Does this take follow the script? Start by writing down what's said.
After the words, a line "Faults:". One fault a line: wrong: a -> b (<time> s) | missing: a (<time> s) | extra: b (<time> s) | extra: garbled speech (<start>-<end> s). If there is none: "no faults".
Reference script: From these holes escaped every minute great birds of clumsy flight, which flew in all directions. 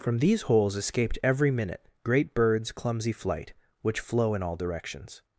From these holes escaped every minute great birds clumsy flight, which flow in all directions.
Faults:
missing: of (2.7 s)
wrong: flew -> flow (4.0 s)